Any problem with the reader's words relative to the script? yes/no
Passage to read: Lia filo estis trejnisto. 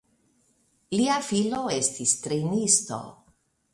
no